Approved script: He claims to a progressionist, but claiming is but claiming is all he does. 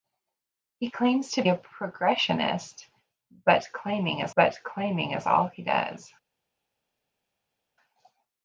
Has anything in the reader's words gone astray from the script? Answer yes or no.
no